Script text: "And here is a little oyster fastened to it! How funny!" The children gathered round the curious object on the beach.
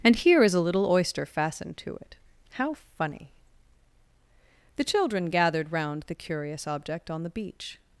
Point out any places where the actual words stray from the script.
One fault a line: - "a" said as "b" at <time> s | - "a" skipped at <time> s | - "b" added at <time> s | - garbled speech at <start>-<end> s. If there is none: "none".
none